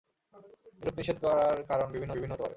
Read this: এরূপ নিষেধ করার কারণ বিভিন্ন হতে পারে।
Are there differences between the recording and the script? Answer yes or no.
yes